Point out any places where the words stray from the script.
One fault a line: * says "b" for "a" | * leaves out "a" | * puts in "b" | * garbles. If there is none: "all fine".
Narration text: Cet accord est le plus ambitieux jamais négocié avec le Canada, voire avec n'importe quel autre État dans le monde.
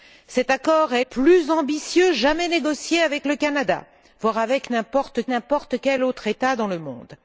* leaves out "le"
* puts in "n'importe"